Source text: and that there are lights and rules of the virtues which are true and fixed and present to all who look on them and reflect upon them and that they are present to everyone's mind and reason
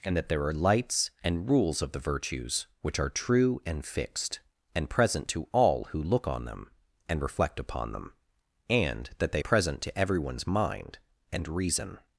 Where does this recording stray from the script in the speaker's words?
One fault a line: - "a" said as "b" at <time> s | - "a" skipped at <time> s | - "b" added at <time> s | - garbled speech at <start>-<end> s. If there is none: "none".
- "are" skipped at 9.4 s